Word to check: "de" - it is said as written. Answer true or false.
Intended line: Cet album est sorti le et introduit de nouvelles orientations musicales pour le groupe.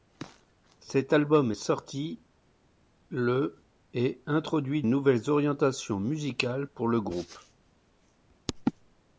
false